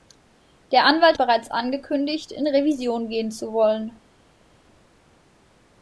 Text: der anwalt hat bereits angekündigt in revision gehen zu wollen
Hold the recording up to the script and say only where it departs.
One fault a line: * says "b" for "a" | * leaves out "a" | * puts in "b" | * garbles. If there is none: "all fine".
* leaves out "hat"